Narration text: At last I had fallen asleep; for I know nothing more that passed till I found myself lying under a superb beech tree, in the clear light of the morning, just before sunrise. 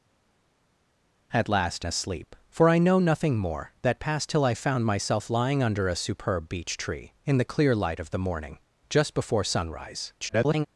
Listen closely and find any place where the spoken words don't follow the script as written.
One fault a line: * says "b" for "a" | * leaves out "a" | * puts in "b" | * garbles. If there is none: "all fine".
* leaves out "I had fallen"
* garbles